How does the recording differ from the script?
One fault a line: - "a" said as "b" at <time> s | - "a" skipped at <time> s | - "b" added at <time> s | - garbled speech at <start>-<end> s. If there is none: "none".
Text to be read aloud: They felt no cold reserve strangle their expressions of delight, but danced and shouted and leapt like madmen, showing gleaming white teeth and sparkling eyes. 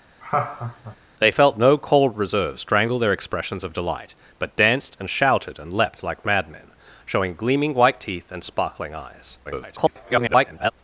- garbled speech at 9.4-10.7 s